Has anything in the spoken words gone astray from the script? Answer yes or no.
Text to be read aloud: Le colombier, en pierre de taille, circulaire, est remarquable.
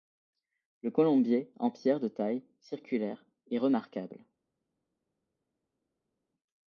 no